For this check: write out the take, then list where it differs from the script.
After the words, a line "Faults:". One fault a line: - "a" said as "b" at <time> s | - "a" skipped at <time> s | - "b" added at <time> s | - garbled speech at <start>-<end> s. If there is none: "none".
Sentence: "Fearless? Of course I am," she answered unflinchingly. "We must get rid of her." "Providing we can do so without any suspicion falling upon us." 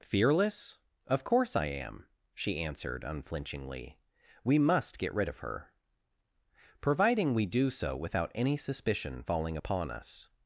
"Fearless? Of course I am," she answered unflinchingly. "We must get rid of her." "Providing we do so without any suspicion falling upon us."
Faults:
- "can" skipped at 7.5 s